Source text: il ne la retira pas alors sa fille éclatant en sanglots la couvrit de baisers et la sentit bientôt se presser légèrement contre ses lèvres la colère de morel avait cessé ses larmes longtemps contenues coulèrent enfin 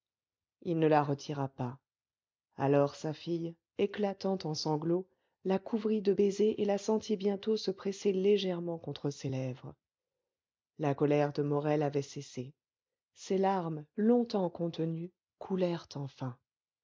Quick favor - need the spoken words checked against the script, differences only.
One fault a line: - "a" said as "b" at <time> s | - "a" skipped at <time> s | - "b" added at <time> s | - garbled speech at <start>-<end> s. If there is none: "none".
none